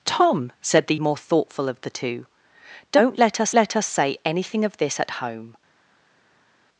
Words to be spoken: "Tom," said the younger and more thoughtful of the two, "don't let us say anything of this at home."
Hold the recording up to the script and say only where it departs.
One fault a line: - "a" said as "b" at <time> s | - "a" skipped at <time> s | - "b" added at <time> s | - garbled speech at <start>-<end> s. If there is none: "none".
- "younger and" skipped at 0.9 s
- "let us" added at 3.5 s